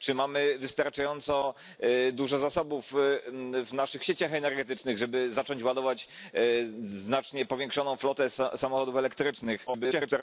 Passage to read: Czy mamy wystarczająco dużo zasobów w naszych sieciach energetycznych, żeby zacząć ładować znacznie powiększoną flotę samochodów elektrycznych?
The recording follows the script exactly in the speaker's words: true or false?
false